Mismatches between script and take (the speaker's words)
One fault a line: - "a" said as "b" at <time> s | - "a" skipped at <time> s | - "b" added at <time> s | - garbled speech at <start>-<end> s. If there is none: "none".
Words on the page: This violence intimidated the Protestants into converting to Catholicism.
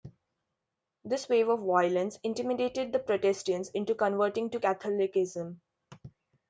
- "wave of" added at 1.3 s